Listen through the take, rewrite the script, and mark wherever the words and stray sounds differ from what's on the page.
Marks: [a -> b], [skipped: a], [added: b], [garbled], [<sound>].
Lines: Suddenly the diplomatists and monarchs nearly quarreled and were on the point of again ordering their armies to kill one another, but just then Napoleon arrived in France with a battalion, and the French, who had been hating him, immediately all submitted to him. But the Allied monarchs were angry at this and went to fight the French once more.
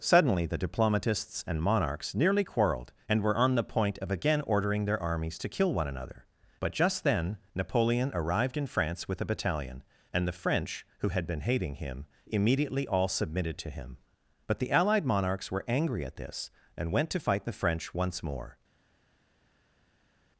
Suddenly the diplomatists and monarchs nearly quarreled and were on the point of again ordering their armies to kill one another, but just then Napoleon arrived in France with a battalion, and the French, who had been hating him, immediately all submitted to him. But the Allied monarchs were angry at this and went to fight the French once more.